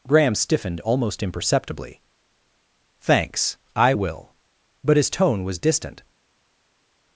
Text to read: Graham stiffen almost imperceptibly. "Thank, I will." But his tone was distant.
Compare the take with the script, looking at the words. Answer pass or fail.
fail